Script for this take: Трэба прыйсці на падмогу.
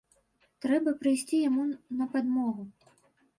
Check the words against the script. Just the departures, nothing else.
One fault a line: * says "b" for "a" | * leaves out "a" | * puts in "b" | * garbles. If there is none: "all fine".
* puts in "яму"